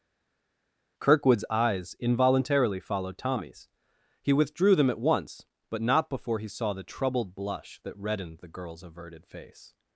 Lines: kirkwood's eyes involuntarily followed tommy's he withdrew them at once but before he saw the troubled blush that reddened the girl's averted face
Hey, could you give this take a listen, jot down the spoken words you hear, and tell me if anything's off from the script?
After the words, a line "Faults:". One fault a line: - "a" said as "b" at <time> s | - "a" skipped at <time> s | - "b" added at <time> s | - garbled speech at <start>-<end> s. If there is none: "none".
kirkwood's eyes involuntarily followed tommy's he withdrew them at once but not before he saw the troubled blush that reddened the girl's averted face
Faults:
- "not" added at 5.8 s